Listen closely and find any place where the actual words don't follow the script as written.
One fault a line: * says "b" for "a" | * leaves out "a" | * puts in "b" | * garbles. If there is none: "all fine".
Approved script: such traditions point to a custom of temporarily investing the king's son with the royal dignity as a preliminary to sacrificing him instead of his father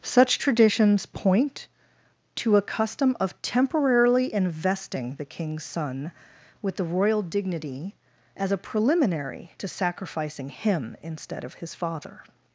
all fine